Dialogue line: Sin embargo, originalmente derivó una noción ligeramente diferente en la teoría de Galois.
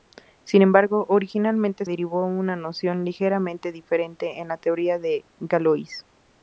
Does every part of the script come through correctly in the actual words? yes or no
yes